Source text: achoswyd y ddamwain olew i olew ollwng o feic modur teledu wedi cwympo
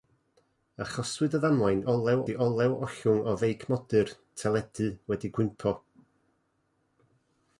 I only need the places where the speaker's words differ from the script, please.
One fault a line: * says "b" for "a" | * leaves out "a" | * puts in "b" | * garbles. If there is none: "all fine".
all fine